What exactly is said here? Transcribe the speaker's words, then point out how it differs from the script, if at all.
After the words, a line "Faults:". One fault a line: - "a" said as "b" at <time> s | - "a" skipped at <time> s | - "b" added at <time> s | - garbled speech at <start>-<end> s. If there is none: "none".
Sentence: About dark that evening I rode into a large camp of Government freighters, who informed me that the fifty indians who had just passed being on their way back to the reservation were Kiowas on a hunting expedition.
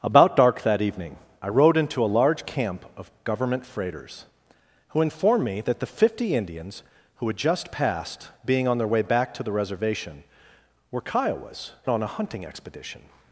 About dark that evening I rode into a large camp of Government freighters, who informed me that the fifty indians who had just passed being on their way back to the reservation were Kiowas on a hunting expedition.
Faults:
none